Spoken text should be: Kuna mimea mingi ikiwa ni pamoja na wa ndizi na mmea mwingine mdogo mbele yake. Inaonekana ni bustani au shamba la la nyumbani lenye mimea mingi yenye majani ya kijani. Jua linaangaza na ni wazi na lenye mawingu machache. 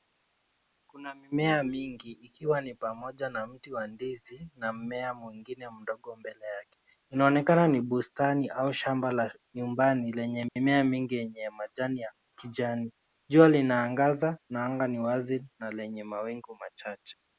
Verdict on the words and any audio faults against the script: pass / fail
fail